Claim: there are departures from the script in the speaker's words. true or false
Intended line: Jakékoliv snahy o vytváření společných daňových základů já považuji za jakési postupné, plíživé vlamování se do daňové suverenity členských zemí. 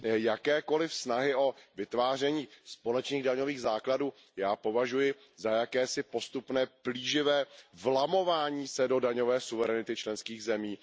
false